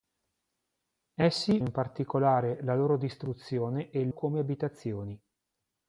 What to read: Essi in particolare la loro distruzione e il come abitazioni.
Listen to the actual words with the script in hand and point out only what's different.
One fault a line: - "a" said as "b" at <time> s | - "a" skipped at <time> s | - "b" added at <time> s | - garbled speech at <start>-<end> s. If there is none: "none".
none